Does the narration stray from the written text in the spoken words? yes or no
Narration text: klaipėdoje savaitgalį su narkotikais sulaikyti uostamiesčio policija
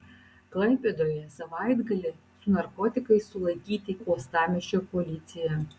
no